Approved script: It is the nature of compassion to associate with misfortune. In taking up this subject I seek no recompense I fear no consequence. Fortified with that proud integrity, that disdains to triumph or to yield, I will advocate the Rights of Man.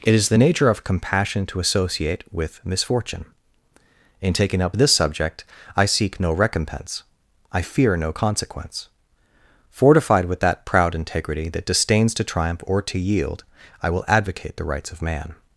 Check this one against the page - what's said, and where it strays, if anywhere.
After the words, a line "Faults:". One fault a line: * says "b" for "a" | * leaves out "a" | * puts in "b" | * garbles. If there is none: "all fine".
It is the nature of compassion to associate with misfortune. In taking up this subject I seek no recompense I fear no consequence. Fortified with that proud integrity, that disdains to triumph or to yield, I will advocate the Rights of Man.
Faults:
all fine